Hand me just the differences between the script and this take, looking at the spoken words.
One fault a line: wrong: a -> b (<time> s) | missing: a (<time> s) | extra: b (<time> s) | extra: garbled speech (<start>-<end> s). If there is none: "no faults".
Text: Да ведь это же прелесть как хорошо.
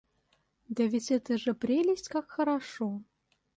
no faults